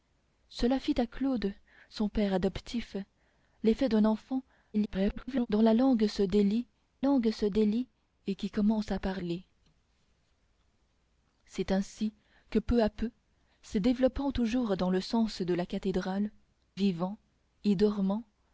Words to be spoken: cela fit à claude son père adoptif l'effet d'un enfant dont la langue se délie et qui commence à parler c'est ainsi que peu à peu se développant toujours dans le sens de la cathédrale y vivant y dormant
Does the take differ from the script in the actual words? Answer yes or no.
yes